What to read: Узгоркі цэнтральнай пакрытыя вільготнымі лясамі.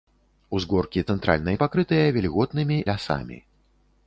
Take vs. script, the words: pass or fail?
pass